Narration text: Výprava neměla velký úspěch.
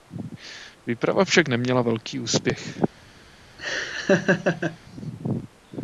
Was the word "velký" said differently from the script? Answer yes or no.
no